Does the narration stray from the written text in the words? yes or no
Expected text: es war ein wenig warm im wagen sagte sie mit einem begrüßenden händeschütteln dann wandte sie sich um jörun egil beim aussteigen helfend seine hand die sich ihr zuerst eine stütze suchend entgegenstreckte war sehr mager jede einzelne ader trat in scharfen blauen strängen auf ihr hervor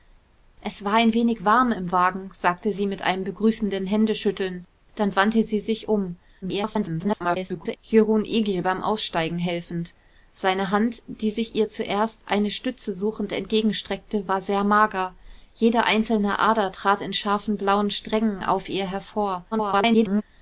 yes